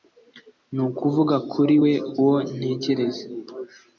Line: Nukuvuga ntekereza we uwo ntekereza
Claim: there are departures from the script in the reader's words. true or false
true